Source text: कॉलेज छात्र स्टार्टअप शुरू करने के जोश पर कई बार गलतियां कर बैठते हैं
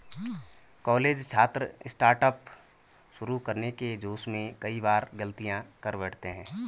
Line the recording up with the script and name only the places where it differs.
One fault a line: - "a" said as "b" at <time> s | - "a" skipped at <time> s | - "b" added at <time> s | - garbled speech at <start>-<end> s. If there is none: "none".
- "पर" said as "में" at 4.3 s